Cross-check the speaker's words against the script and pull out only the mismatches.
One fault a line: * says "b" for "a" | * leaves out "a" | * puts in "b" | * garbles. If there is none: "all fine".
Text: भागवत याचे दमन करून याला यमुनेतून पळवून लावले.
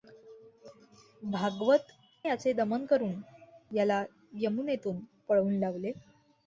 all fine